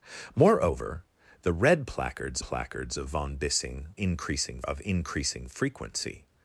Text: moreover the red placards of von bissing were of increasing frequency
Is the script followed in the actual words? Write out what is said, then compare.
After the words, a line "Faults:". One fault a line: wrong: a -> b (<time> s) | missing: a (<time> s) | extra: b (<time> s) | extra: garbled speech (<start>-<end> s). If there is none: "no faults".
moreover the red placards placards of von bissing increasing of increasing frequency
Faults:
extra: placards (2.4 s)
wrong: were -> increasing (4.0 s)